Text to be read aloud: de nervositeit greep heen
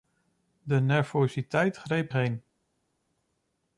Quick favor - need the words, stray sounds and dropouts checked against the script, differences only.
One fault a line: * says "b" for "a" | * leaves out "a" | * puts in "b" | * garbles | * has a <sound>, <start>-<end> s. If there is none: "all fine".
all fine